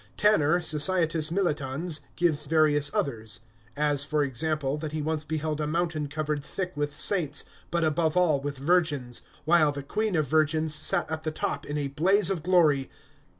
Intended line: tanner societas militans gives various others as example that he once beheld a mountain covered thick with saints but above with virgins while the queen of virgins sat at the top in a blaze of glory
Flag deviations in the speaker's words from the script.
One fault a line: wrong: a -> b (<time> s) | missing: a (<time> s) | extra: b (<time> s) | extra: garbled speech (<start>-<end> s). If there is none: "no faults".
extra: for (4.0 s)
extra: all (8.2 s)